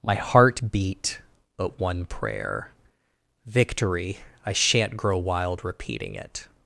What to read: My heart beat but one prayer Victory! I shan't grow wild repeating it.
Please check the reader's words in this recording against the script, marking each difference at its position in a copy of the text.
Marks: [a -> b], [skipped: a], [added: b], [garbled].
My heart beat but one prayer Victory! I shan't grow wild repeating it.